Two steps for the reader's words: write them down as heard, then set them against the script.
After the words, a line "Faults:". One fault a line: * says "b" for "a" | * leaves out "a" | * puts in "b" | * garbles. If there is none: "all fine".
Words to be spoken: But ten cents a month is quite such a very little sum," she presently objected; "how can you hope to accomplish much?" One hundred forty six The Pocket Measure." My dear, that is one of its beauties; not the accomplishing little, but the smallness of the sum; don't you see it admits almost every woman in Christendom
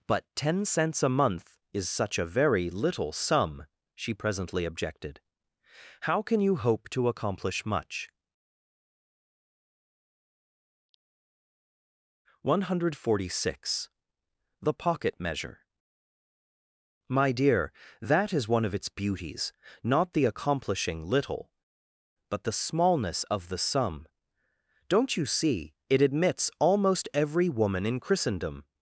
But ten cents a month is such a very little sum," she presently objected; "how can you hope to accomplish much?" One hundred forty six The Pocket Measure." My dear, that is one of its beauties; not the accomplishing little, but the smallness of the sum; don't you see it admits almost every woman in Christendom
Faults:
* leaves out "quite"